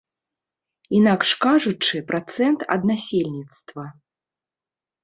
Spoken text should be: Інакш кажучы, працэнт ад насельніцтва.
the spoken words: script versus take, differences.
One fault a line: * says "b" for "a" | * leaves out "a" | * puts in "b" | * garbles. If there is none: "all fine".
all fine